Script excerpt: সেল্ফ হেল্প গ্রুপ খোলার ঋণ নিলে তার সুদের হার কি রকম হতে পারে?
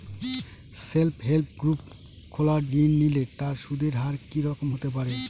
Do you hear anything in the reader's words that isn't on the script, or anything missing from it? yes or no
no